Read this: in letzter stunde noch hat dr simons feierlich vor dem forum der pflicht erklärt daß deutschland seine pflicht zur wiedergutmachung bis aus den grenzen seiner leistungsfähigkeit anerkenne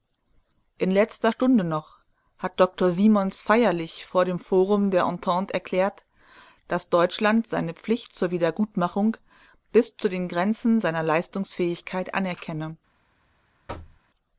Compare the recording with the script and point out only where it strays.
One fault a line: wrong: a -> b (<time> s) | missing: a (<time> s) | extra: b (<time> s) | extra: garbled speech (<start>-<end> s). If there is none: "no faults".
wrong: pflicht -> entente (5.0 s)
wrong: aus -> zu (10.0 s)